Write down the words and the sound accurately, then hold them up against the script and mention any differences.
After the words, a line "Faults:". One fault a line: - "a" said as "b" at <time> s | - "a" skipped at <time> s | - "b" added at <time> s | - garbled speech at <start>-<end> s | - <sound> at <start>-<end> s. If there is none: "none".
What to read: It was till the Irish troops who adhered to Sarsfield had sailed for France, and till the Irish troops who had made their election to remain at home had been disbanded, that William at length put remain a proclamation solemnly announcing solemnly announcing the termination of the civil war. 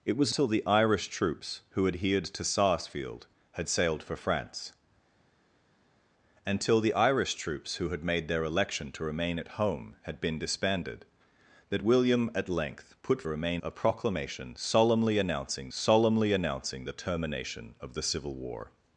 It was till the Irish troops who adhered to Sarsfield had sailed for France, and till the Irish troops who had made their election to remain at home had been disbanded, that William at length put remain a proclamation solemnly announcing solemnly announcing the termination of the civil war.
Faults:
none